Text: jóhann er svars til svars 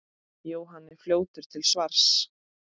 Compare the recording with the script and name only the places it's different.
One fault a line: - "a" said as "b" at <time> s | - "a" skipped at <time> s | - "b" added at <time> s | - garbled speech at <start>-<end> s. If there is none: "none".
- "svars" said as "fljótur" at 1.0 s